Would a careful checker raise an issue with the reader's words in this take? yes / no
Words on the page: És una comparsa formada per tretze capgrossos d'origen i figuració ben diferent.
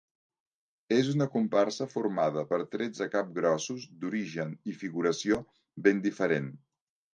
no